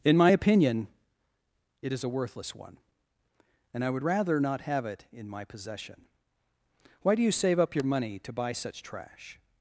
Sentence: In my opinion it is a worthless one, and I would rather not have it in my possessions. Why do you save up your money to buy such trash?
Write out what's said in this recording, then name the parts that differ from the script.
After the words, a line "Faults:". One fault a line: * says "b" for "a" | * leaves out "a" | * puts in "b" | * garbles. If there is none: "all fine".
In my opinion it is a worthless one, and I would rather not have it in my possession. Why do you save up your money to buy such trash?
Faults:
* says "possession" for "possessions"